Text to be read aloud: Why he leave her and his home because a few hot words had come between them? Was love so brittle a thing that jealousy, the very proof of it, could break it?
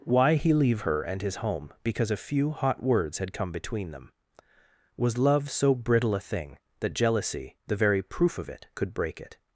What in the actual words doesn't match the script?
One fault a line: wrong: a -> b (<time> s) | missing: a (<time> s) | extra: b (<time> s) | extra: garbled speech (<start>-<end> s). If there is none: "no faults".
no faults